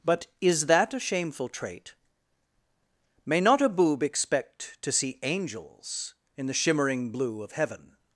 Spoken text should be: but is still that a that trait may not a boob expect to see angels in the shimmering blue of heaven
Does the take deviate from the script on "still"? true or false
true